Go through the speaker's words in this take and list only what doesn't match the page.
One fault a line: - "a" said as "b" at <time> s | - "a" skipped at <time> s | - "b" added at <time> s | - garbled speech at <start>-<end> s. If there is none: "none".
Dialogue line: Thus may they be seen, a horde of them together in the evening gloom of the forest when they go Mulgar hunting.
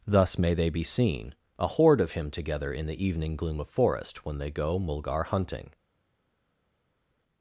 - "them" said as "him" at 2.1 s
- "the" skipped at 3.7 s